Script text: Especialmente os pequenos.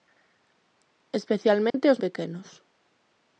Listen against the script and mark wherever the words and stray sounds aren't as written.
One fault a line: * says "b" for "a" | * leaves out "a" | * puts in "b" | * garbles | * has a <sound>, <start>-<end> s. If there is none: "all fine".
* has a dropout, 1.7-1.7 s